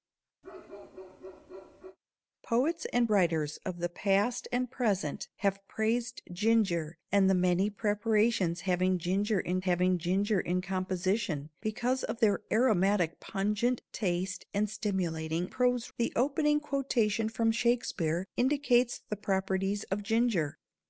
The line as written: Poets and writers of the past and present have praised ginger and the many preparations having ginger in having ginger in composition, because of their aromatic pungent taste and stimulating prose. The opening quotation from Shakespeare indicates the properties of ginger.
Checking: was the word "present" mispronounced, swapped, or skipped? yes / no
no